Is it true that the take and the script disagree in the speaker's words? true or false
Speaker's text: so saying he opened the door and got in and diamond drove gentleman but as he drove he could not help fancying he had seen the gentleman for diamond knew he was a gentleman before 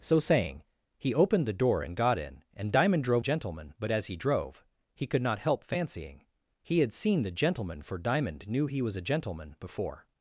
false